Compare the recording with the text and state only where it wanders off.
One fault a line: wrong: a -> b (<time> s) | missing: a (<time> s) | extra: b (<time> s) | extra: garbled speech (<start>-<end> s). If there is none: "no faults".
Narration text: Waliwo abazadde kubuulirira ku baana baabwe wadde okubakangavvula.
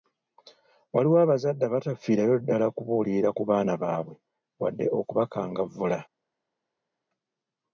extra: abatafiirayo ddala (1.6 s)